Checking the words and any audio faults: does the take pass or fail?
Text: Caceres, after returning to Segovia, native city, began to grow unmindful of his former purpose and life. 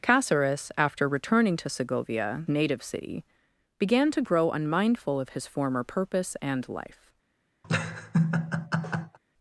fail